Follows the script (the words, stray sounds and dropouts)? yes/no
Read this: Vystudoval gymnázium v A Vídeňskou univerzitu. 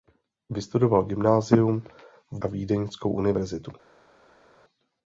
yes